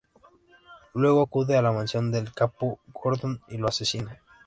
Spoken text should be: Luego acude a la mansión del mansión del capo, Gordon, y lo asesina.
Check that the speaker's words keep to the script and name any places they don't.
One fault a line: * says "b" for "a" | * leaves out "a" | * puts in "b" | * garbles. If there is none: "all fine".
* leaves out "mansión del"